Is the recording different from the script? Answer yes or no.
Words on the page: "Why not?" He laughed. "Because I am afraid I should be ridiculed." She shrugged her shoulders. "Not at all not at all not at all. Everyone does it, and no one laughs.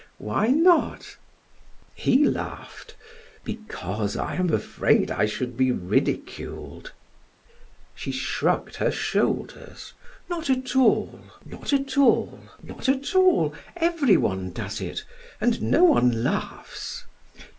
no